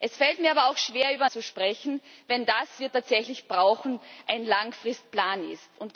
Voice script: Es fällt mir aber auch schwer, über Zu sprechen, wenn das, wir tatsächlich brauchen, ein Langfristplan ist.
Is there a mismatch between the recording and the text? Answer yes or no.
no